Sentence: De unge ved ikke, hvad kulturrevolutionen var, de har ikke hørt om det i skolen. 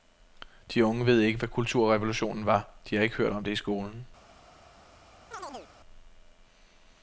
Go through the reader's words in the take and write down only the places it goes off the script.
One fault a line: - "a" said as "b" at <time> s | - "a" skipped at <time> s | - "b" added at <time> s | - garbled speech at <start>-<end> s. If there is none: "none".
none